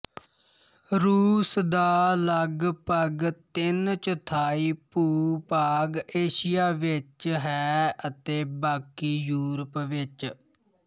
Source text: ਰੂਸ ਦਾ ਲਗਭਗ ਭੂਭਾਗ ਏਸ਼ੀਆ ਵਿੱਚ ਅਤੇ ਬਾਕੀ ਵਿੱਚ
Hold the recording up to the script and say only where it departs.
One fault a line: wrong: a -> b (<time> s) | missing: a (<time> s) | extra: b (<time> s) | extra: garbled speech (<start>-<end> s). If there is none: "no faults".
extra: ਤਿੰਨ ਚੌਥਾਈ (3.5 s)
extra: ਹੈ (7.4 s)
extra: ਯੂਰਪ (9.2 s)